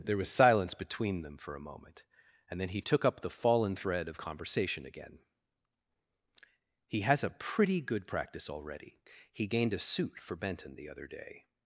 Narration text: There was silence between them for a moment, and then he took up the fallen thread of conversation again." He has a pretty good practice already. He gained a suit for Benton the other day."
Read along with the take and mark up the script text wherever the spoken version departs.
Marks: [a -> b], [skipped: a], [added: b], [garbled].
There was silence between them for a moment, and then he took up the fallen thread of conversation again." He has a pretty good practice already. He gained a suit for Benton the other day."